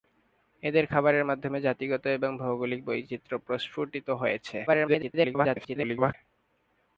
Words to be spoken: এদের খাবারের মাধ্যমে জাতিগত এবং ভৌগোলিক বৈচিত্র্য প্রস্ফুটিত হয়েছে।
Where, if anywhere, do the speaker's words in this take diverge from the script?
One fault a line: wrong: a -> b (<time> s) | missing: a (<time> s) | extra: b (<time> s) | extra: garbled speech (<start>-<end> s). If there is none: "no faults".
extra: garbled speech (4.7-6.1 s)